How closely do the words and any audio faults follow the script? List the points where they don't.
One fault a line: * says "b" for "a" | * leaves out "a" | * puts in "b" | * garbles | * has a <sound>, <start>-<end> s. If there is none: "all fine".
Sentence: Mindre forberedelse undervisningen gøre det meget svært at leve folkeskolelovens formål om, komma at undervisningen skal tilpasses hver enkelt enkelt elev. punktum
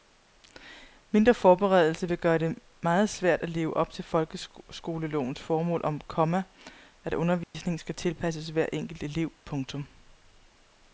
* says "vil" for "undervisningen"
* puts in "op til"
* has a dropout, 7.4-7.5 s
* leaves out "enkelt"